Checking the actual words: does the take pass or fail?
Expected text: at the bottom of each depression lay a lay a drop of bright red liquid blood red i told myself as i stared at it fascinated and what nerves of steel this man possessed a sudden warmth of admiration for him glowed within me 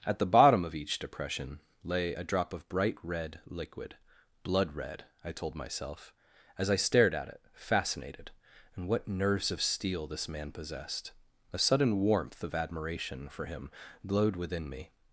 fail